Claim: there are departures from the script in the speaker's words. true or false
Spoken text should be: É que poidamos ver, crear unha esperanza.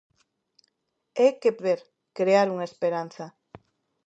true